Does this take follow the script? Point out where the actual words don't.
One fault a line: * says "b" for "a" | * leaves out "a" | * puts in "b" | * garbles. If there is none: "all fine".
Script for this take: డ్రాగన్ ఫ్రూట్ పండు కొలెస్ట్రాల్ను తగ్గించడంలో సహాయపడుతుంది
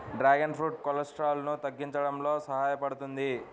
* leaves out "పండు"